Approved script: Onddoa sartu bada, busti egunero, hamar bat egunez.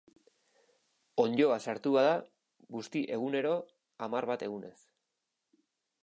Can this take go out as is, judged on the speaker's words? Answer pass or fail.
pass